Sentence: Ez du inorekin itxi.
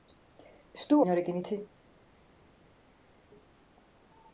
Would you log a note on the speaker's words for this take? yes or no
no